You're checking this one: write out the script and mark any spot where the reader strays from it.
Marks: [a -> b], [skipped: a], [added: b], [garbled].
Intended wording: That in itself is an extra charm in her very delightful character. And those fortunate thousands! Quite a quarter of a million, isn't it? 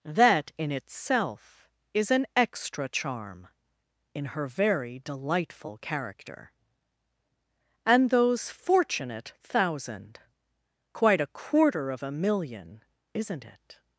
That in itself is an extra charm in her very delightful character. And those fortunate [thousands! -> thousand] Quite a quarter of a million, isn't it?